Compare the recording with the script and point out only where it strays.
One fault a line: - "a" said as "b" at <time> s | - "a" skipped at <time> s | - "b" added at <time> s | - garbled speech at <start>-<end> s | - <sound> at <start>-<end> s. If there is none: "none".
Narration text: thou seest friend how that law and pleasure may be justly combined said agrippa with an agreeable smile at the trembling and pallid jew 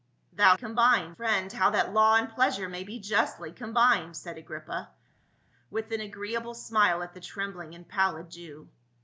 - "seest" said as "combined" at 0.5 s